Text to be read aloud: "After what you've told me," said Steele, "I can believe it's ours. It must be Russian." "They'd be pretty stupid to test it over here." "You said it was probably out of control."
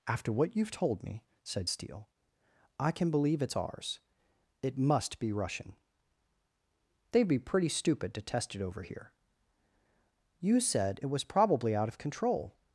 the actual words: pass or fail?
pass